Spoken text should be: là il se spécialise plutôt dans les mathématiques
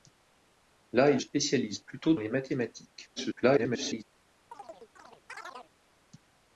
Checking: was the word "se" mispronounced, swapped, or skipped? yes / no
yes